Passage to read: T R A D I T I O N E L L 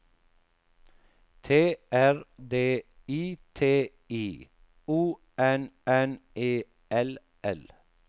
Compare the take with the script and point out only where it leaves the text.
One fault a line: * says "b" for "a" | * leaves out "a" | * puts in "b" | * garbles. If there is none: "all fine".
* leaves out "A"
* puts in "N"